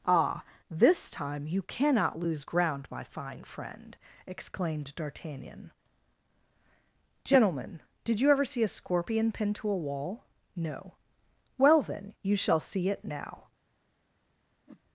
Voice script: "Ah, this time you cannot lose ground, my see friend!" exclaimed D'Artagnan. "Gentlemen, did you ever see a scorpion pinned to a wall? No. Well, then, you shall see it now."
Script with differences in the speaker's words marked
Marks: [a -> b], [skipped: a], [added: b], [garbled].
"Ah, this time you cannot lose ground, my [see -> fine] friend!" exclaimed D'Artagnan. "Gentlemen, did you ever see a scorpion pinned to a wall? No. Well, then, you shall see it now."